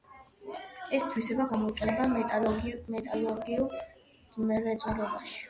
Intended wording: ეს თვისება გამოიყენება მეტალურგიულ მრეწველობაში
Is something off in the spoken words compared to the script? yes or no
no